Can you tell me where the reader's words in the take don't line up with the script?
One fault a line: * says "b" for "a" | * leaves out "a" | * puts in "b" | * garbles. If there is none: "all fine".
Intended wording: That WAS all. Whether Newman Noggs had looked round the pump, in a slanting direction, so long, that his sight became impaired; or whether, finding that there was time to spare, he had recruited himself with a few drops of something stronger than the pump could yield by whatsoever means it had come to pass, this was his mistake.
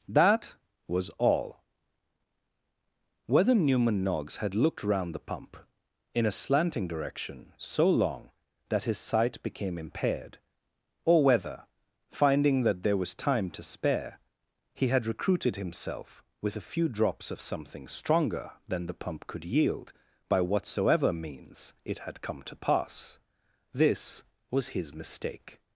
all fine